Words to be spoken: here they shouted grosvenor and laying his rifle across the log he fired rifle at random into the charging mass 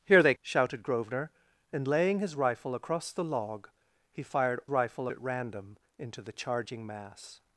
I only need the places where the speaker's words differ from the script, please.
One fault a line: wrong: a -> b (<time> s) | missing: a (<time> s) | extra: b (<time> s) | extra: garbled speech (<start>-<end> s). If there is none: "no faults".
no faults